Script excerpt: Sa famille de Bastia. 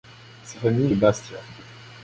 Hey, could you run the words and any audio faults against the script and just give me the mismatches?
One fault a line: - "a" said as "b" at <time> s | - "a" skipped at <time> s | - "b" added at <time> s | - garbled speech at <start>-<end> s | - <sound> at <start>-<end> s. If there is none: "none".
none